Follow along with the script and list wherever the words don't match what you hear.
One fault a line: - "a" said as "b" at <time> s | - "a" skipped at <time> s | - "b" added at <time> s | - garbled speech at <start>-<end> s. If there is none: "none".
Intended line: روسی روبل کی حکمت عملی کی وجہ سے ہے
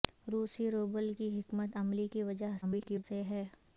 - garbled speech at 2.6-3.0 s